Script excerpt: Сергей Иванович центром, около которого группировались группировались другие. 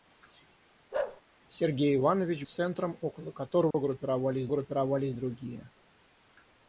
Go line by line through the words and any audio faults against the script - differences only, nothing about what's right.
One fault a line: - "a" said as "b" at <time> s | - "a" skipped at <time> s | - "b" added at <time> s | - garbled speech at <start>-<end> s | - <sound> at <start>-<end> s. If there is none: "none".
- bark at 0.9-1.2 s
- dropout at 3.7-3.7 s